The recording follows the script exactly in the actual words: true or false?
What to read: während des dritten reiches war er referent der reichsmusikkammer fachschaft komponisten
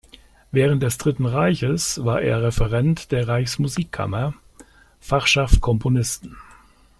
true